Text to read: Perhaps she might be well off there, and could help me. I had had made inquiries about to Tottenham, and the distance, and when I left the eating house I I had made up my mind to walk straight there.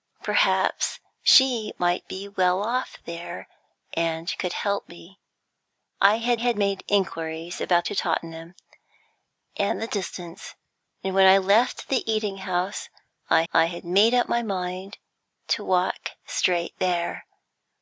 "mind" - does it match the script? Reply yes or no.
yes